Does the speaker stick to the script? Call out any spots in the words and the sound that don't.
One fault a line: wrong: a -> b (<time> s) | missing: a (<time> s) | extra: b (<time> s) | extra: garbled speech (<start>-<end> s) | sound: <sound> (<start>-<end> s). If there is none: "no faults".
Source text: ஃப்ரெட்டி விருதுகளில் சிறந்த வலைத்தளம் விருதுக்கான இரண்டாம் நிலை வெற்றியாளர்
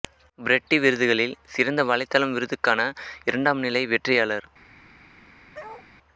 sound: bark (5.5-5.9 s)